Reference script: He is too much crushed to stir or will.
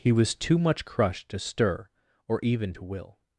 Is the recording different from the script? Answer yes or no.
yes